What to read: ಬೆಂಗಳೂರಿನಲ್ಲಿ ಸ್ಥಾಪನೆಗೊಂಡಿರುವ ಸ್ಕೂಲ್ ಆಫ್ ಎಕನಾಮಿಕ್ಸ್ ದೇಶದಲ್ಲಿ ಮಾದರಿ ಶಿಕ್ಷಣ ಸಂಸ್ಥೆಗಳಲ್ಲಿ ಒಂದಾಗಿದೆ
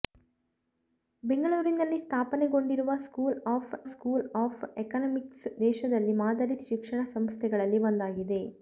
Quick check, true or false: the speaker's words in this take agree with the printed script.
false